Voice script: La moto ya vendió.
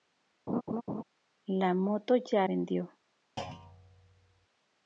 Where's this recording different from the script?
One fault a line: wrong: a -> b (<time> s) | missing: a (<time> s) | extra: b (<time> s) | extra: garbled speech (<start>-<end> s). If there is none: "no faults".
no faults